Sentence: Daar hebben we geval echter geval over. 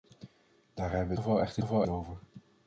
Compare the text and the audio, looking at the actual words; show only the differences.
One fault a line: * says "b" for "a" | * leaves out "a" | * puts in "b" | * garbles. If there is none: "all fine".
all fine